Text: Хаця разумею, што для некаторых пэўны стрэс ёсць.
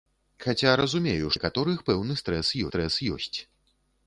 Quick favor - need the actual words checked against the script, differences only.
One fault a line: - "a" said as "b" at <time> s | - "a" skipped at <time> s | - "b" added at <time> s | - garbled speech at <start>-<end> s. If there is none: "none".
- "што для" skipped at 1.3 s
- "стрэс" added at 2.7 s